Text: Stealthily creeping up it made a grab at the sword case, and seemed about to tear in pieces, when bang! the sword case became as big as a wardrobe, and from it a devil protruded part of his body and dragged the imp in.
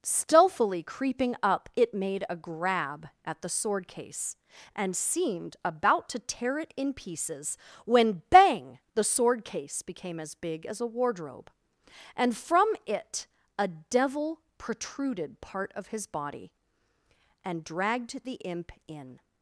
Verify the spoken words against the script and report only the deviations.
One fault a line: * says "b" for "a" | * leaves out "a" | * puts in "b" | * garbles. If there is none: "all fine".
* puts in "it"